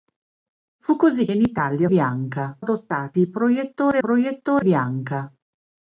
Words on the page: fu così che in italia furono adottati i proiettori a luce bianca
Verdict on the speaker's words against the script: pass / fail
fail